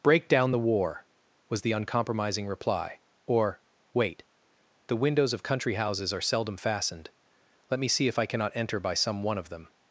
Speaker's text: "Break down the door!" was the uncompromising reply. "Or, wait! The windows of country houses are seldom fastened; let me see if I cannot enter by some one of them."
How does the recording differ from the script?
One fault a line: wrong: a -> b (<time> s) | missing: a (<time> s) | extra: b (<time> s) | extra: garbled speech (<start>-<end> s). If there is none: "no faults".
wrong: door -> war (0.6 s)